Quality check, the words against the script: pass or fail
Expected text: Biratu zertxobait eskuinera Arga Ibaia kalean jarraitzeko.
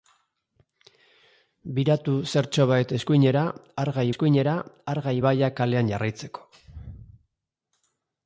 fail